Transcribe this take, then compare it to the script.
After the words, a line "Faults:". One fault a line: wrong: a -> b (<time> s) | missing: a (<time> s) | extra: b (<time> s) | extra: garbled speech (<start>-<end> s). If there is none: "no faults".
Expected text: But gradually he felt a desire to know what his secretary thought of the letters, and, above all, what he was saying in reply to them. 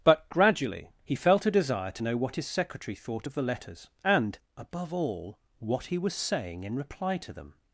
But gradually he felt a desire to know what his secretary thought of the letters, and, above all, what he was saying in reply to them.
Faults:
no faults